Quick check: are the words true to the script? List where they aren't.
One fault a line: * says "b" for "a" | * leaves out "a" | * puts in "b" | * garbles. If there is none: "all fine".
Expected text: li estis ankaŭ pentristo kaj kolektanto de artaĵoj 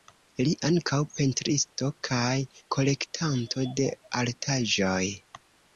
* leaves out "estis"